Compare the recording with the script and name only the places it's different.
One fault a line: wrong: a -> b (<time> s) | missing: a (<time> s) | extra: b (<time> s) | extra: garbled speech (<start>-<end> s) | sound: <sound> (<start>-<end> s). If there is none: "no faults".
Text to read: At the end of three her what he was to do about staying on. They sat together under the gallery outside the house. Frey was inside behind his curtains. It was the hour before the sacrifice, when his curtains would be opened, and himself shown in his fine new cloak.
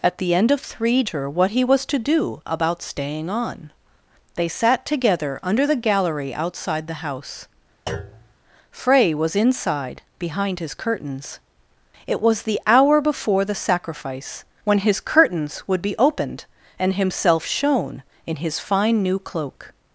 sound: thud (7.9-8.3 s)